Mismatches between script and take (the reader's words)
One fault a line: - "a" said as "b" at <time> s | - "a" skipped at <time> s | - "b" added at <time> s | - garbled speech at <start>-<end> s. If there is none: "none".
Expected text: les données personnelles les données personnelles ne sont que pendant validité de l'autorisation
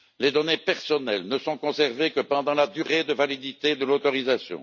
- "les données personnelles" skipped at 1.3 s
- "conservées" added at 1.6 s
- "la durée de" added at 2.5 s